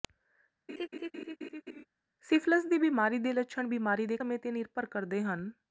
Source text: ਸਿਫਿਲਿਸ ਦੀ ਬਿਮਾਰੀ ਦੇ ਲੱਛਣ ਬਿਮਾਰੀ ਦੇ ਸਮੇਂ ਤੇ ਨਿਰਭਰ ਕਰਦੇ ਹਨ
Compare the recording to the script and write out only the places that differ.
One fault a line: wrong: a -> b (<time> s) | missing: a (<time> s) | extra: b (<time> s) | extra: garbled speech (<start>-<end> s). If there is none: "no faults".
no faults